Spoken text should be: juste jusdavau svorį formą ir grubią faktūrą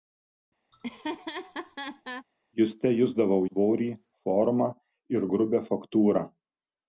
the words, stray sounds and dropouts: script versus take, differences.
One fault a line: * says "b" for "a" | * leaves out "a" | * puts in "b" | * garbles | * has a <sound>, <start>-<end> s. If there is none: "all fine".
* has a laugh, 0.7-2.3 s